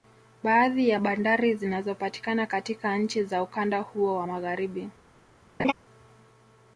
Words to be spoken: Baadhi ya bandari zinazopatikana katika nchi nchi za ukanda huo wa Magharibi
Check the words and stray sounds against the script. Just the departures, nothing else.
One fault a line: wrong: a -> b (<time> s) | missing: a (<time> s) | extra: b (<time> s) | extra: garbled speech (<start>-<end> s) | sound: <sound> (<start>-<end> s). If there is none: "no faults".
missing: nchi (3.2 s)
sound: laugh (5.6-5.7 s)